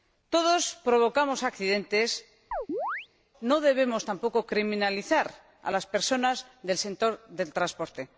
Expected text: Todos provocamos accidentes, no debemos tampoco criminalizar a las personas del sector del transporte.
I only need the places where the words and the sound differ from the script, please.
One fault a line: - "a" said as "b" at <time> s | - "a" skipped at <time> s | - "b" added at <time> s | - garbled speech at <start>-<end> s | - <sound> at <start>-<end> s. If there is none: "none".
- chirp at 2.5-3.1 s